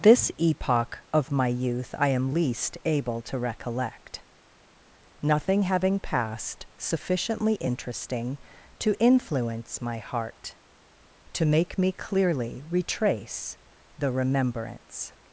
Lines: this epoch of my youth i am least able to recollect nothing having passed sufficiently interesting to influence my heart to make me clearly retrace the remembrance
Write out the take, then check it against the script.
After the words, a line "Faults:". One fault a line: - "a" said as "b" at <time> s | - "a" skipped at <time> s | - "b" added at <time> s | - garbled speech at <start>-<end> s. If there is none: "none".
this epoch of my youth i am least able to recollect nothing having passed sufficiently interesting to influence my heart to make me clearly retrace the remembrance
Faults:
none